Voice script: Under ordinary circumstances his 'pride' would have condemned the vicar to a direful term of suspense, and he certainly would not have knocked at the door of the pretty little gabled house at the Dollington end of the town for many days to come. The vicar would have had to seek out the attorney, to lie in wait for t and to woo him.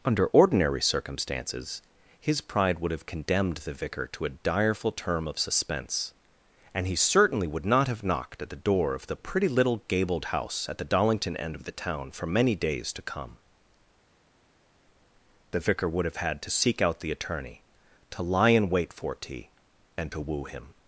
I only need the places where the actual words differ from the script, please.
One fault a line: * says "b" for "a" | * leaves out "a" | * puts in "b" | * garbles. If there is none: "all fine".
all fine